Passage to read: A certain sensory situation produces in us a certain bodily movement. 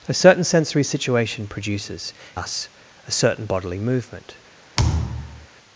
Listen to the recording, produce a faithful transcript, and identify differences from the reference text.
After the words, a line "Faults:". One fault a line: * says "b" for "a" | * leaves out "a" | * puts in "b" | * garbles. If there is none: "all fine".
A certain sensory situation produces us a certain bodily movement.
Faults:
* leaves out "in"